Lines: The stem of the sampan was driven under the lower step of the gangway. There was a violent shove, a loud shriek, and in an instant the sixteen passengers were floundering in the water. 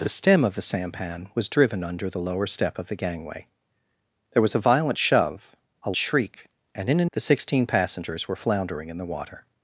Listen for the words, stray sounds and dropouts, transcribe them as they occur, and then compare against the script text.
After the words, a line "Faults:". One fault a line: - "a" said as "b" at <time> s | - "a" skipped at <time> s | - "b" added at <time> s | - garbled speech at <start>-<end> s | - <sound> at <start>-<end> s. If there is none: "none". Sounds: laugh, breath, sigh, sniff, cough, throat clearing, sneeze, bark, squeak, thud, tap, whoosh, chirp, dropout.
The stem of the sampan was driven under the lower step of the gangway. There was a violent shove, a shriek, and in an the sixteen passengers were floundering in the water.
Faults:
- "loud" skipped at 5.9 s
- "instant" skipped at 7.1 s